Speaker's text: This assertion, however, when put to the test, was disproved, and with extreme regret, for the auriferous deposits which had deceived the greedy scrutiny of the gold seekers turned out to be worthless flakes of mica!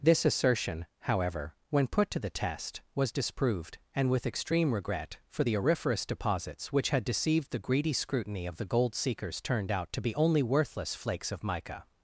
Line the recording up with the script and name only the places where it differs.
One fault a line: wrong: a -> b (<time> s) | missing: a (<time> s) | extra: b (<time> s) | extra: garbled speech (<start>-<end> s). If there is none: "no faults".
extra: only (10.2 s)